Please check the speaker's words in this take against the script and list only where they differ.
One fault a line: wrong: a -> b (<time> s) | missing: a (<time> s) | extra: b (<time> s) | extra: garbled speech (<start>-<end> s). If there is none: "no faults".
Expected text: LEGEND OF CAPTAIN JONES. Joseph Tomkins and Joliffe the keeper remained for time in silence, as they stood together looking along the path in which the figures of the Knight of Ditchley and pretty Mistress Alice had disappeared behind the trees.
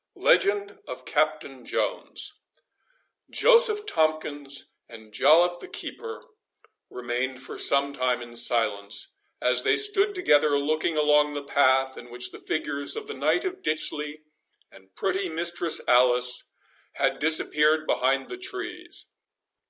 extra: some (7.6 s)